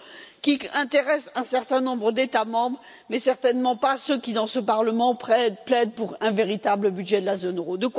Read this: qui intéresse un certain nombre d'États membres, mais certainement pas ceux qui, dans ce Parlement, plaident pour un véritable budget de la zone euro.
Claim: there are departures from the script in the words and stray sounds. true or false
false